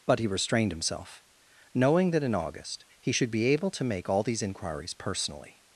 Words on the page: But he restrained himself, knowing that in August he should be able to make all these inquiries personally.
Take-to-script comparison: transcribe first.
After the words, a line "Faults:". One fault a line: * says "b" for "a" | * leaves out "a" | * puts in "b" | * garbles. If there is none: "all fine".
But he restrained himself, knowing that in August he should be able to make all these inquiries personally.
Faults:
all fine